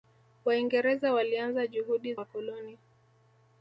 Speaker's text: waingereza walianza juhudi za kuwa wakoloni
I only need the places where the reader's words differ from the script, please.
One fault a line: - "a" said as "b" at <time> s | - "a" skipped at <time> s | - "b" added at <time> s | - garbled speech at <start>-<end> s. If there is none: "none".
- "za kuwa" skipped at 2.1 s